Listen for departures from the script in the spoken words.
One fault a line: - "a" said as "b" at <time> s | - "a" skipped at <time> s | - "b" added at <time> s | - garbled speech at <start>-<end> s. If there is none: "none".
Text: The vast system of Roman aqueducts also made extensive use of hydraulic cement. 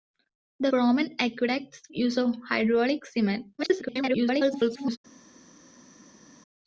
- "vast system of" skipped at 0.7 s
- "also made extensive" skipped at 1.8 s
- garbled speech at 3.6-5.0 s